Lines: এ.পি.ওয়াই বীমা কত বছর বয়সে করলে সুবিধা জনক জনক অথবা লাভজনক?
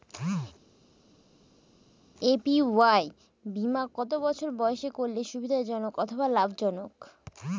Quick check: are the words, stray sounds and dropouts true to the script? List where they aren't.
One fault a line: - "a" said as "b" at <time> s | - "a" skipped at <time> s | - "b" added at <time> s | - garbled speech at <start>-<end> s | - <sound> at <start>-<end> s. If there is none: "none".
- "জনক" skipped at 5.9 s